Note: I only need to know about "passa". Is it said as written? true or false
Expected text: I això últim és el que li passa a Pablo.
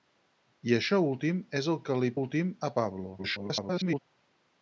false